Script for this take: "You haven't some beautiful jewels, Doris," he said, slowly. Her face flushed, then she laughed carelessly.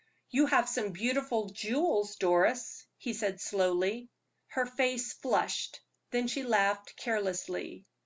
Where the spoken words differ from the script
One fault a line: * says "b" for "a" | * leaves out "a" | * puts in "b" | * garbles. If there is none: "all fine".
* says "have" for "haven't"